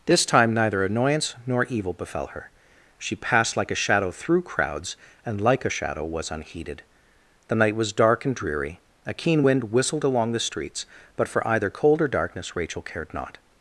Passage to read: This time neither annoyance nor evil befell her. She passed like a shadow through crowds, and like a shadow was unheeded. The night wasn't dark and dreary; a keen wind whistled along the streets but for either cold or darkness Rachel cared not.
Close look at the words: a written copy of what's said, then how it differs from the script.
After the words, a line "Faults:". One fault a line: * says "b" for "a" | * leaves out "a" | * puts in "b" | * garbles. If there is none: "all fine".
This time neither annoyance nor evil befell her. She passed like a shadow through crowds, and like a shadow was unheeded. The night was dark and dreary; a keen wind whistled along the streets but for either cold or darkness Rachel cared not.
Faults:
* says "was" for "wasn't"